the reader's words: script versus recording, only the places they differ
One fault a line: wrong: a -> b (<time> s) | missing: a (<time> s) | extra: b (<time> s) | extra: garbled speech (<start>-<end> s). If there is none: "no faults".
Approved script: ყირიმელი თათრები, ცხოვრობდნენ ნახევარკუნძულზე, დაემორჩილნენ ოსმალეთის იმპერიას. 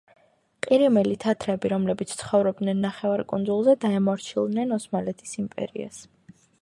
extra: რომლებიც (1.7 s)